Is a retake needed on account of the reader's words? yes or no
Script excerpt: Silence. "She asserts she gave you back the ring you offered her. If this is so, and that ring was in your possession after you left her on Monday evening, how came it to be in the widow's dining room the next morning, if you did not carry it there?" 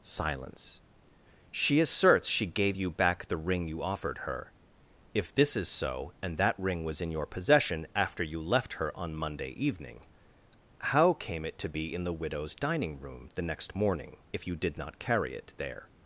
no